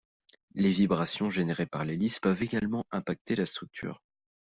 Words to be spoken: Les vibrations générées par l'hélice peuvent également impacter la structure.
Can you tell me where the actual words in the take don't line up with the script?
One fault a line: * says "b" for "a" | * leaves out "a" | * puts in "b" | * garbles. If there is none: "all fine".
all fine